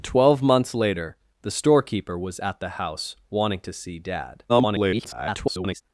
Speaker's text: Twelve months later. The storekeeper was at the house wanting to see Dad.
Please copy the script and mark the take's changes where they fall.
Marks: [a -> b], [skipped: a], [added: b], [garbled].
Twelve months later. The storekeeper was at the house wanting to see Dad. [garbled]